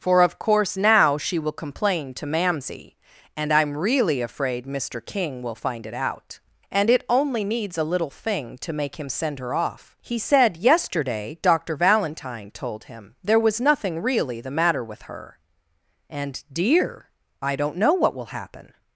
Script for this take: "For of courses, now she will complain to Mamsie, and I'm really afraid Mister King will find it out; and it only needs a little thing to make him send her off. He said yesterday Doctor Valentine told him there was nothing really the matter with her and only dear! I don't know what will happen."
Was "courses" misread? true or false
true